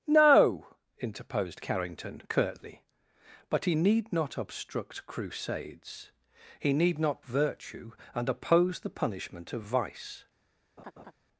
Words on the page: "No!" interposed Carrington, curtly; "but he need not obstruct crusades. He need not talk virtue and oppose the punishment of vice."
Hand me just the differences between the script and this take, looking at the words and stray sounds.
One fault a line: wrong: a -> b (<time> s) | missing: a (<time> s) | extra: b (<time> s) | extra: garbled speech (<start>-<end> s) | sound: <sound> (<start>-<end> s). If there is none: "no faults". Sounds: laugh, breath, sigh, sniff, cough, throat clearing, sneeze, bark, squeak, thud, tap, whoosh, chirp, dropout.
missing: talk (7.2 s)
sound: laugh (10.8-11.1 s)